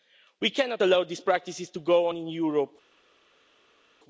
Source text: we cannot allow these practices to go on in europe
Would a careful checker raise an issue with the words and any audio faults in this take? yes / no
no